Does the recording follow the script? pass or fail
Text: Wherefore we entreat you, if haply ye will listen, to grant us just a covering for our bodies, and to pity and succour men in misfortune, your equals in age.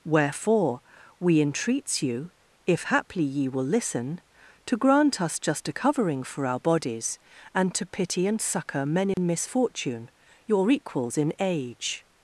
fail